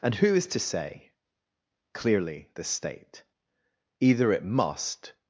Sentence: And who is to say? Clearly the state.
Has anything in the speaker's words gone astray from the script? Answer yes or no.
yes